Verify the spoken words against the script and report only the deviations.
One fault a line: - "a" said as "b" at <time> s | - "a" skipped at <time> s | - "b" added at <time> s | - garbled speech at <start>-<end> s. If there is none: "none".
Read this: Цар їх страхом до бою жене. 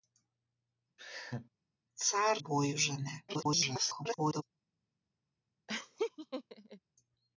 - "їх страхом до" skipped at 2.4 s
- garbled speech at 3.3-4.4 s